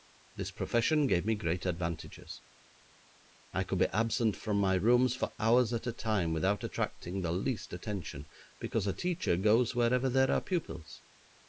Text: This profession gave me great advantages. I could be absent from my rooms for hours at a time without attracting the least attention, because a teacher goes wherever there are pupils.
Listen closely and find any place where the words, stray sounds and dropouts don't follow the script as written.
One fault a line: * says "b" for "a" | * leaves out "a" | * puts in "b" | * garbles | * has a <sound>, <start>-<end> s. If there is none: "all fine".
all fine